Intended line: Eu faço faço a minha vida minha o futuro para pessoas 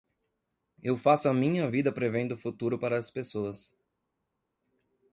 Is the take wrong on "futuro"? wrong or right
right